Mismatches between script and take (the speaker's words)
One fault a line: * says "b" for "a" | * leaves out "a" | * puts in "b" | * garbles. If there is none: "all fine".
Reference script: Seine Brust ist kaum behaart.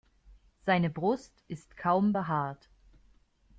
all fine